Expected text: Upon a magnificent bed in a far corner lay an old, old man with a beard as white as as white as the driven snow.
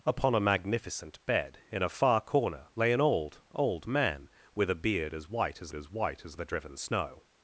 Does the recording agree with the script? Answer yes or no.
yes